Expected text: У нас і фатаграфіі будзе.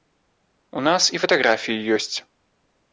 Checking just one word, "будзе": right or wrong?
wrong